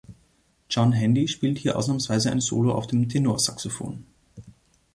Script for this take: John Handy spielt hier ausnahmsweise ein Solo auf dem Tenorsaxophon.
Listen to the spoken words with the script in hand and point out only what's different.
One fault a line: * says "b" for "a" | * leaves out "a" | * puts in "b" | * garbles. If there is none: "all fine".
all fine